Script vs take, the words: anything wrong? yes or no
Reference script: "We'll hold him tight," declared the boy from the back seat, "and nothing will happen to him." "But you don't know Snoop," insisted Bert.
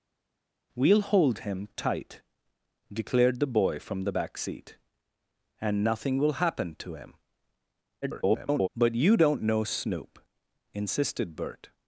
yes